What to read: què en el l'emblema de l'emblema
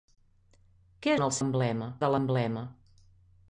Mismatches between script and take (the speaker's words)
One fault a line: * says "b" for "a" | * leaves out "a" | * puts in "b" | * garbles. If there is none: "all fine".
all fine